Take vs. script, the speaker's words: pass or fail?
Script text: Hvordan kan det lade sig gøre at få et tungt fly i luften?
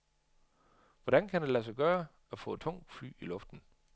pass